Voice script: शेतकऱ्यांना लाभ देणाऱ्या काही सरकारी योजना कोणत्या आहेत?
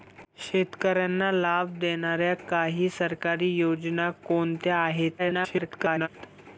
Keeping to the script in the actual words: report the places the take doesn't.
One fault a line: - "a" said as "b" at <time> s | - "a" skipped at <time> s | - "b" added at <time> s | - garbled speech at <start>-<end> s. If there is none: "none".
- garbled speech at 5.2-6.1 s